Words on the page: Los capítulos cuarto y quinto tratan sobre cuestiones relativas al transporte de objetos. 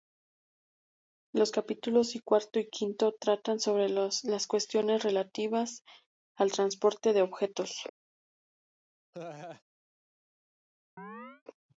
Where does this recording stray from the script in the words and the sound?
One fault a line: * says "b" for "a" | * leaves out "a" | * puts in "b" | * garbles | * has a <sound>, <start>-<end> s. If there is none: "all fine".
* puts in "las"
* has a laugh, 9.1-9.6 s
* has a chirp, 11.0-11.4 s